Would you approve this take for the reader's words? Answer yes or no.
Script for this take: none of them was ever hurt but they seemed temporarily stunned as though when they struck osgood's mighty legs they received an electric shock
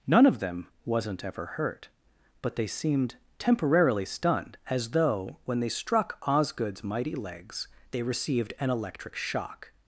no